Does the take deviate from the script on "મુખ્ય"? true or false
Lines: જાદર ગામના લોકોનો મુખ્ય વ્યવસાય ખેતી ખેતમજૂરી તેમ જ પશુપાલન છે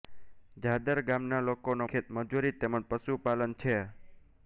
true